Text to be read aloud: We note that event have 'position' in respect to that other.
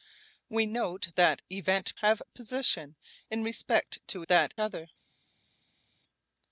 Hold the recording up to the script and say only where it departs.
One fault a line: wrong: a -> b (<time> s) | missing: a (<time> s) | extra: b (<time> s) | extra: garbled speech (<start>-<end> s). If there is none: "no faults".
no faults